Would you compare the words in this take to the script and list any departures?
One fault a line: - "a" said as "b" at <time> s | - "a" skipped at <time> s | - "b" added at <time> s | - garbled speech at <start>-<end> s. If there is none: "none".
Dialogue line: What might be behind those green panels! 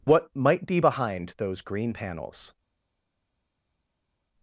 none